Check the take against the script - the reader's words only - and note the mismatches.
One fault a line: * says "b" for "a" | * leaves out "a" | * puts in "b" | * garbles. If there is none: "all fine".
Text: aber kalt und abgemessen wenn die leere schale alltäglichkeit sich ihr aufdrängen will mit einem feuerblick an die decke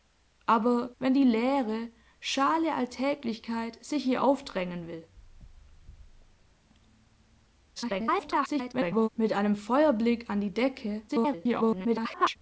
* leaves out "kalt und abgemessen"
* garbles
* garbles